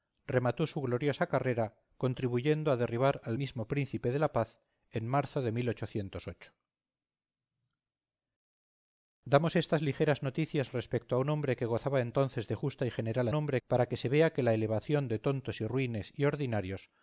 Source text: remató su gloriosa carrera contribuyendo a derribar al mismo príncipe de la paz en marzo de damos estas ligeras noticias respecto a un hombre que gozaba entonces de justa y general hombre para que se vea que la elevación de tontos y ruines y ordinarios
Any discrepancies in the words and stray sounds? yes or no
no